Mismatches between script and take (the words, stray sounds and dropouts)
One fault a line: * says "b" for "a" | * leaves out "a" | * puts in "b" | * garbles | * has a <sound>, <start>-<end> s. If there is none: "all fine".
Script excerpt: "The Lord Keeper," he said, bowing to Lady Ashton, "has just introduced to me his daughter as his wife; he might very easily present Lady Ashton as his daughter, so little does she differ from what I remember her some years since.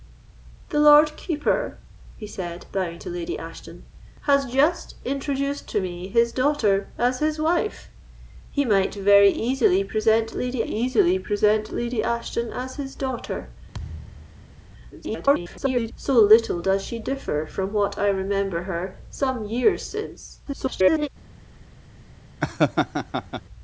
* puts in "easily present Lady"
* has a thud, 13.7-14.7 s
* garbles
* garbles
* has a laugh, 22.4-23.4 s